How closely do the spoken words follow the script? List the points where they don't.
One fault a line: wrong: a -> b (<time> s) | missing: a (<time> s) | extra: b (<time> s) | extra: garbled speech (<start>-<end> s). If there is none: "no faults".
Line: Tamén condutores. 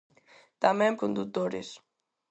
no faults